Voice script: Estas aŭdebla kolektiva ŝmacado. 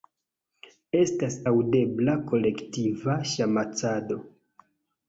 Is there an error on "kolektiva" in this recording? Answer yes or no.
no